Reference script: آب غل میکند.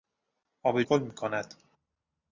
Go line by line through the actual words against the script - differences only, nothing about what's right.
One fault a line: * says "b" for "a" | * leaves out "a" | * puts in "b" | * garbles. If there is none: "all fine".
all fine